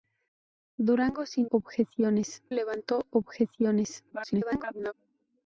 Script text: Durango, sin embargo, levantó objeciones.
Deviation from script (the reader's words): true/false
true